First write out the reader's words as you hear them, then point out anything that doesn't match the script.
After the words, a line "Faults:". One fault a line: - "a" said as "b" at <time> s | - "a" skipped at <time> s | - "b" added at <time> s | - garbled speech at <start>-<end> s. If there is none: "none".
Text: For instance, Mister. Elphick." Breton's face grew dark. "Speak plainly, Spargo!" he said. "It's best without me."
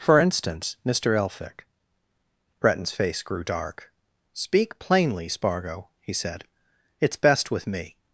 For instance, Mister. Elphick." Breton's face grew dark. "Speak plainly, Spargo!" he said. "It's best with me."
Faults:
- "without" said as "with" at 7.5 s